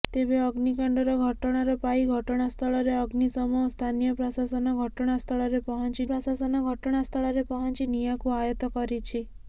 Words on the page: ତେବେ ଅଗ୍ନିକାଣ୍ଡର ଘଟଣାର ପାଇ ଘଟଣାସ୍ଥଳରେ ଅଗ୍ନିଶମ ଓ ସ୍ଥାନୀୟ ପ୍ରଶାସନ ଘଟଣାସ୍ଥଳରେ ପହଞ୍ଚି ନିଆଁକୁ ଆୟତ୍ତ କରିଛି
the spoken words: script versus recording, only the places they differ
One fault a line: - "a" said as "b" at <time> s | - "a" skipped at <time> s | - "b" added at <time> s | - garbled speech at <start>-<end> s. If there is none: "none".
- "ପ୍ରଶାସନ ଘଟଣାସ୍ଥଳରେ ପହଞ୍ଚି" added at 6.1 s